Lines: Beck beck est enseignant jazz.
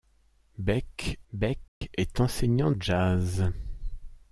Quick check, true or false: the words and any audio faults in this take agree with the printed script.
false